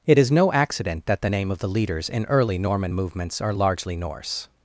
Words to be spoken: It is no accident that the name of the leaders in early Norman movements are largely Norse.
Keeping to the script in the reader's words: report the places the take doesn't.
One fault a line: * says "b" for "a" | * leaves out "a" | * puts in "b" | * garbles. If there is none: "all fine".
all fine